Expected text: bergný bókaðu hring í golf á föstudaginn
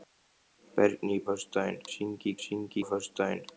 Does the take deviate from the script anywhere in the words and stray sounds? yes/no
yes